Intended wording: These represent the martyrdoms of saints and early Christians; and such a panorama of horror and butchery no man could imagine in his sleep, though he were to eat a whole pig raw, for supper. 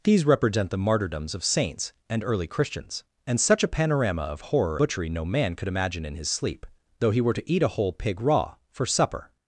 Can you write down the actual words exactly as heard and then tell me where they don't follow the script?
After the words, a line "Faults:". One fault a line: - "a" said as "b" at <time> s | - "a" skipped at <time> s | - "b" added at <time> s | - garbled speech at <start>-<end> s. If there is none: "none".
These represent the martyrdoms of saints and early Christians; and such a panorama of horror butchery no man could imagine in his sleep, though he were to eat a whole pig raw, for supper.
Faults:
- "and" skipped at 4.8 s